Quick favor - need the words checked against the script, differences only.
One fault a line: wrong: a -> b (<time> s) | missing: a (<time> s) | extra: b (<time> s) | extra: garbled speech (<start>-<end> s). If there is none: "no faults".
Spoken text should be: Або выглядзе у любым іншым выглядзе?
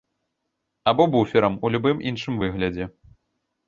wrong: выглядзе -> буферам (1.2 s)